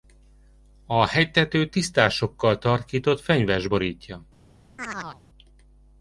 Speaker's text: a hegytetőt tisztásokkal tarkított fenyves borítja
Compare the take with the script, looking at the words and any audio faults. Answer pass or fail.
fail